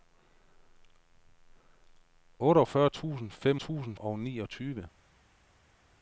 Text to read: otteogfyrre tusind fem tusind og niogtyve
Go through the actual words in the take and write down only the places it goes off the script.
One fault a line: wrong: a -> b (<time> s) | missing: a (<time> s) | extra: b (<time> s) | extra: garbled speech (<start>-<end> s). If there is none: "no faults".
no faults